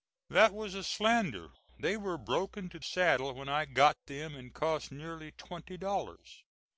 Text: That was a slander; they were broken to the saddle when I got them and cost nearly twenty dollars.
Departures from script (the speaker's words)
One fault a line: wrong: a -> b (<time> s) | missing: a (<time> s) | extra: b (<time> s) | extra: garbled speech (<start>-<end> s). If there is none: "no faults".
missing: the (2.8 s)